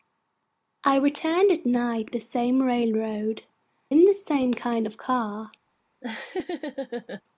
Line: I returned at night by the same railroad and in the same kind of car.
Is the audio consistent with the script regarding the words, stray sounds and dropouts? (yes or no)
no